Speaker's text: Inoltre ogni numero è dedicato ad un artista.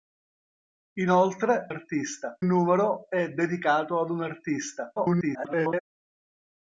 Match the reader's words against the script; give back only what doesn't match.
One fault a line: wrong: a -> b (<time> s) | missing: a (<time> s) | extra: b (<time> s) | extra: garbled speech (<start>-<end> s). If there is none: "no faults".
wrong: ogni -> artista (1.7 s)
extra: garbled speech (5.0-5.8 s)